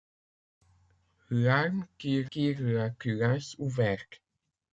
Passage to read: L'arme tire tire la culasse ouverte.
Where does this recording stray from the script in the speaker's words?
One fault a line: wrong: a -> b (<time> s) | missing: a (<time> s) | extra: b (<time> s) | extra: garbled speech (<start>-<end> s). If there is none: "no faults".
no faults